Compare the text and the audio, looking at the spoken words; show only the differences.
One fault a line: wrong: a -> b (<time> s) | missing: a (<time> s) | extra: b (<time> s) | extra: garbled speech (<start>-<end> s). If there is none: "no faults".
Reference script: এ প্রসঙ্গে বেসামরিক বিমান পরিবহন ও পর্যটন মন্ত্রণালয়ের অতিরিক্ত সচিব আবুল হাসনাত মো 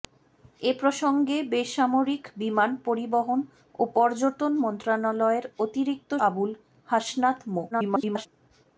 missing: সচিব (6.1 s)
extra: garbled speech (7.7-8.3 s)